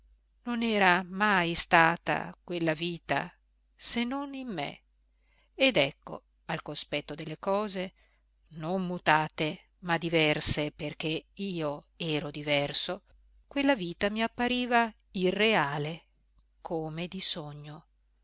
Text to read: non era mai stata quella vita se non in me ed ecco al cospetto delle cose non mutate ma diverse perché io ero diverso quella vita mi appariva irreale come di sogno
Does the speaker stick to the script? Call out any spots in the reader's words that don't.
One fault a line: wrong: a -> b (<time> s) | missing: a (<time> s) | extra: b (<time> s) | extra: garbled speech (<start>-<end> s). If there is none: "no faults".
no faults